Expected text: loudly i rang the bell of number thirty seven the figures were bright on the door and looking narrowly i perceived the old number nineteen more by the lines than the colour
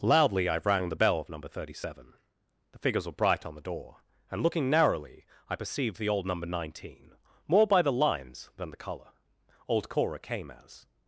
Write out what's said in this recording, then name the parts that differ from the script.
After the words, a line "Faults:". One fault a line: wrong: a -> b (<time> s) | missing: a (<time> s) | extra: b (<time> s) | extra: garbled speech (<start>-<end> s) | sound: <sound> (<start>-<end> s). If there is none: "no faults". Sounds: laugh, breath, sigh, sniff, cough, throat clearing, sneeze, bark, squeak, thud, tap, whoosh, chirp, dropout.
loudly i rang the bell of number thirty seven the figures were bright on the door and looking narrowly i perceived the old number nineteen more by the lines than the colour old cora came as
Faults:
extra: old cora came as (9.7 s)